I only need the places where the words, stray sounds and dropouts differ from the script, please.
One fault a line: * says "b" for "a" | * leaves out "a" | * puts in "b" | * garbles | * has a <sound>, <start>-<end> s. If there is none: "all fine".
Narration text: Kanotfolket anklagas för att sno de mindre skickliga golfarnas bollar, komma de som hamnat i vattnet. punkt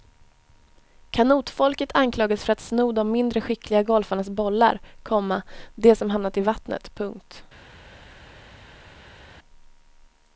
all fine